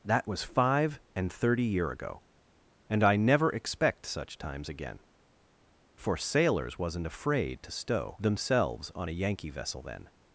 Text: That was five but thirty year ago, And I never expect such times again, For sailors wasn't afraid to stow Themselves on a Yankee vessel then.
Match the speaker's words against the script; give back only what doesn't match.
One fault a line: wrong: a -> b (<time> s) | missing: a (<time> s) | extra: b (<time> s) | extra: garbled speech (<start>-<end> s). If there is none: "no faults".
wrong: but -> and (1.2 s)